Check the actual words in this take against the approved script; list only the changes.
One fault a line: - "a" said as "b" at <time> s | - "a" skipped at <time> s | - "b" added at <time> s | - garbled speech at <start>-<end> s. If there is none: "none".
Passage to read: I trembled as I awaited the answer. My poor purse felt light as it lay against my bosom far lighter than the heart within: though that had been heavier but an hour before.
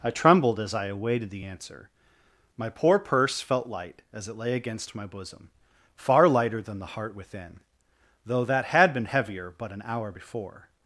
none